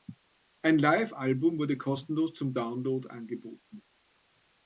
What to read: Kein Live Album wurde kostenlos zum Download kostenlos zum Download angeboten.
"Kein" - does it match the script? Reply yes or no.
no